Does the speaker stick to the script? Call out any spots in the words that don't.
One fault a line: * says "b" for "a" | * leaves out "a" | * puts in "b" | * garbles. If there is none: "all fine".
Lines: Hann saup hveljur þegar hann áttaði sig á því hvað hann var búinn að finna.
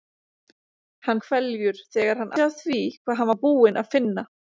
* leaves out "saup"
* leaves out "áttaði"